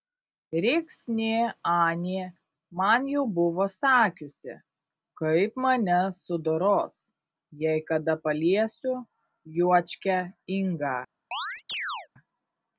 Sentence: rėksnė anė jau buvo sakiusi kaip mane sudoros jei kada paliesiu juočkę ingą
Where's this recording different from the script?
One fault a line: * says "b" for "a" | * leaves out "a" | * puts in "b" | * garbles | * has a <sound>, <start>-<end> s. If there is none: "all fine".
* puts in "man"
* has a chirp, 11.3-12.1 s